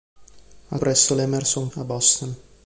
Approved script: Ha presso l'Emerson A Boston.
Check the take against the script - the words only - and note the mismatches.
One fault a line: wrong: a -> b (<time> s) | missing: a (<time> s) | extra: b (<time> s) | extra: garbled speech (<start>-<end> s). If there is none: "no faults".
no faults